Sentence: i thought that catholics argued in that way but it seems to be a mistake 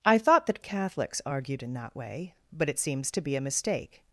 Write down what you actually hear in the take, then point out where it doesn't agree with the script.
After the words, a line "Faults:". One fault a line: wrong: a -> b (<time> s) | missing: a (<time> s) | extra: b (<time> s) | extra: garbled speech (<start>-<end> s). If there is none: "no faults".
i thought that catholics argued in that way but it seems to be a mistake
Faults:
no faults